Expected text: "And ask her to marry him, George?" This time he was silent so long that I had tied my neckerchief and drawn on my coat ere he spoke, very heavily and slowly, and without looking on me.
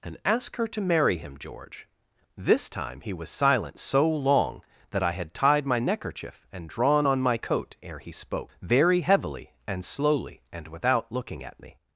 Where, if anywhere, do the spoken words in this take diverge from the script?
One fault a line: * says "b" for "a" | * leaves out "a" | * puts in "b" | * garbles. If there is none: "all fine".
* says "at" for "on"